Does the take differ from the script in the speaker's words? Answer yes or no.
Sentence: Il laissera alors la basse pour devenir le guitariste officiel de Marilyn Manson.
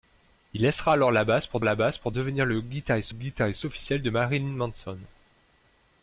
yes